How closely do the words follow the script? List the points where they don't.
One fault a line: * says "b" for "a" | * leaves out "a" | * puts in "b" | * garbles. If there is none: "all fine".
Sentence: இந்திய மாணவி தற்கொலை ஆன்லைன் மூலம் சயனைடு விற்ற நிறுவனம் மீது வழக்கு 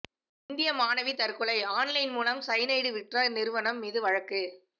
all fine